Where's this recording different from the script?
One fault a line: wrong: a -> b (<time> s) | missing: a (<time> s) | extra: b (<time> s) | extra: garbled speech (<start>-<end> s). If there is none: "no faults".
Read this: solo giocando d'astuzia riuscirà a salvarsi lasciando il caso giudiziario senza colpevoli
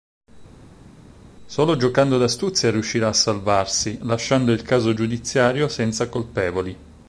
no faults